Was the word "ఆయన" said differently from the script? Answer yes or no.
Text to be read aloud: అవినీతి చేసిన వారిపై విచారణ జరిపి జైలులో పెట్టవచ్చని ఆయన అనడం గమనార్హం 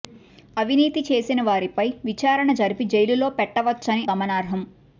yes